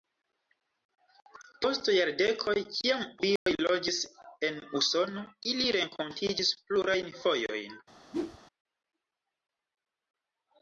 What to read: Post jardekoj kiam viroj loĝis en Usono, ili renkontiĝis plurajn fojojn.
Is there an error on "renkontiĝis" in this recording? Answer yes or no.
no